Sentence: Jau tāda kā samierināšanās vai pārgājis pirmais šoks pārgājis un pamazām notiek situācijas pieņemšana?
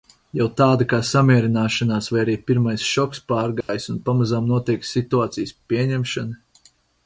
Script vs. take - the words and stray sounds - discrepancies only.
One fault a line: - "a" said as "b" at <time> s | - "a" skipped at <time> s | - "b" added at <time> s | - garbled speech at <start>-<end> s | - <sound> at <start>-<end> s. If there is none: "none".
- "pārgājis" said as "arī" at 2.2 s
- dropout at 3.6-3.7 s